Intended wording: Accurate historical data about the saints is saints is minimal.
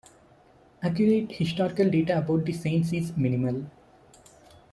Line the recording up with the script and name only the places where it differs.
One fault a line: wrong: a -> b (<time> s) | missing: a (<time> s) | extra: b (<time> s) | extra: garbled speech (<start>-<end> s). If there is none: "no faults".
missing: saints is (3.2 s)